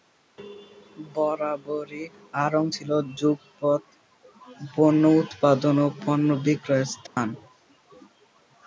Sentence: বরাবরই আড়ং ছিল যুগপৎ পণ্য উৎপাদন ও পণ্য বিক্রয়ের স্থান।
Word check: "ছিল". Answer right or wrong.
right